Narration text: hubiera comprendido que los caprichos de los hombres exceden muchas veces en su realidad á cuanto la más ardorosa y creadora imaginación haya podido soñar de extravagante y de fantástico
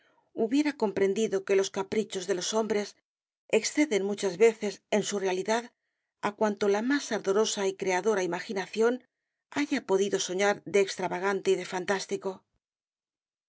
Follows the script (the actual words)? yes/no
yes